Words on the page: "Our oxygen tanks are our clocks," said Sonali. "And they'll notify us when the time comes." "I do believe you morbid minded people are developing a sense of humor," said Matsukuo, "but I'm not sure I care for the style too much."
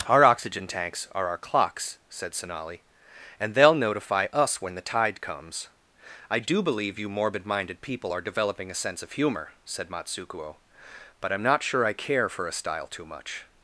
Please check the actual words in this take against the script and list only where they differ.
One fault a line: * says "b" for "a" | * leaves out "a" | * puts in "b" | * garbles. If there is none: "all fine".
* says "tide" for "time"
* says "a" for "the"